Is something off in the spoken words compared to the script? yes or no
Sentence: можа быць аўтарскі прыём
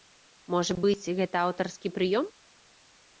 yes